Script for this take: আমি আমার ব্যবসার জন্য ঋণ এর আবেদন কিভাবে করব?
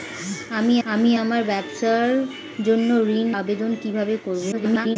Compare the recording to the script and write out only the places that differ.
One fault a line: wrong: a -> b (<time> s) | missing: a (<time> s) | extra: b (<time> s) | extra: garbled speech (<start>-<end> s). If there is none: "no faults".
extra: আমি (0.8 s)
missing: এর (3.3 s)
extra: garbled speech (4.5-5.0 s)